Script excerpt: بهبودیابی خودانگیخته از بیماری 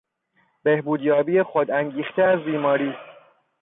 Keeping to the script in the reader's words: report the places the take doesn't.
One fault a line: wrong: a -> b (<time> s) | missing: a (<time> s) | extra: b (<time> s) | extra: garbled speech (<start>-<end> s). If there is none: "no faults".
no faults